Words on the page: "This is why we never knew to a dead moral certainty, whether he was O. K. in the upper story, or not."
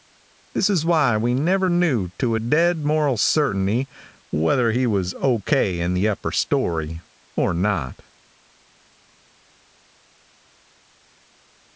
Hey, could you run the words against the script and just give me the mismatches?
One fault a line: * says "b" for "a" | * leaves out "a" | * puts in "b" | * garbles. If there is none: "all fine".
all fine